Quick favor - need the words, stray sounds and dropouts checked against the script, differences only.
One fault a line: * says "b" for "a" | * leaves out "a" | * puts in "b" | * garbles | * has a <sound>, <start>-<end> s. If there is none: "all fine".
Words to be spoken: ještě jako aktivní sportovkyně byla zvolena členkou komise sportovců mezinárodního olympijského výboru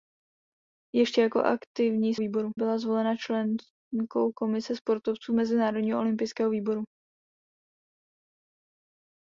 * says "výboru" for "sportovkyně"